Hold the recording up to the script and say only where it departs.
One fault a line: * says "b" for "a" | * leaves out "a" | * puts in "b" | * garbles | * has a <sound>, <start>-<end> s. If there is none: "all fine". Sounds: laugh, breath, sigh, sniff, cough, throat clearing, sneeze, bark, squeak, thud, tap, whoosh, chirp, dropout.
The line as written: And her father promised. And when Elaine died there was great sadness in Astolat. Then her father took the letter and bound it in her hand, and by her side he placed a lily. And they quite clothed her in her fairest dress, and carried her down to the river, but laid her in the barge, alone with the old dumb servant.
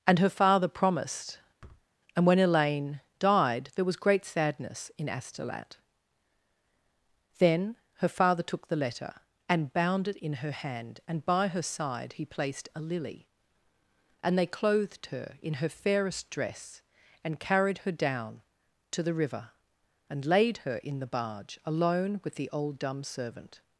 * has a thud, 1.6-1.9 s
* leaves out "quite"
* says "and" for "but"